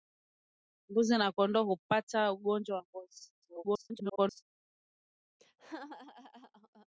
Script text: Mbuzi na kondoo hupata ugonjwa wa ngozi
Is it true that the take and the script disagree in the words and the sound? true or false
true